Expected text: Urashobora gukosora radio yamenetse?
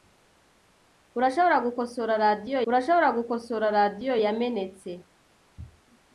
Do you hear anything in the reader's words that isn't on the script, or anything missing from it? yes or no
yes